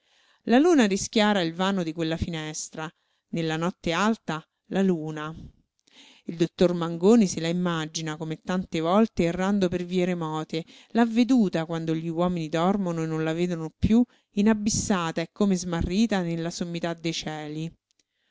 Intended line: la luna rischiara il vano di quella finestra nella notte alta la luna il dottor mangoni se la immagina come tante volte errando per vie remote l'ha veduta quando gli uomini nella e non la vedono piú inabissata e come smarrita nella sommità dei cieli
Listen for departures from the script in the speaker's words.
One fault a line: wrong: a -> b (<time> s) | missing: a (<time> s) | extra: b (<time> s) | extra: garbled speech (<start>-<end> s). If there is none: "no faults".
wrong: nella -> dormono (12.5 s)